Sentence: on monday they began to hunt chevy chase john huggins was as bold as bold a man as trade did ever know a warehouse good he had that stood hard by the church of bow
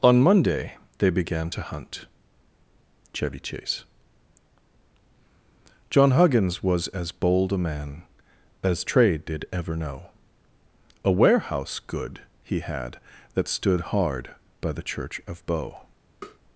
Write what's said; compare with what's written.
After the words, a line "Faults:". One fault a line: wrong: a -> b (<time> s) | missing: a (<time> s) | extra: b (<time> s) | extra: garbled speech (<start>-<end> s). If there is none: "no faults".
on monday they began to hunt chevy chase john huggins was as bold a man as trade did ever know a warehouse good he had that stood hard by the church of bow
Faults:
missing: as bold (7.5 s)